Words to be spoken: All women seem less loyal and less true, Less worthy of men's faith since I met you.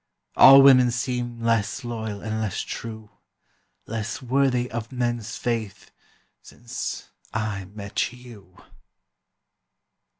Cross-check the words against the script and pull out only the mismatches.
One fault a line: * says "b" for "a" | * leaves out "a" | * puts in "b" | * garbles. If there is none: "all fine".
all fine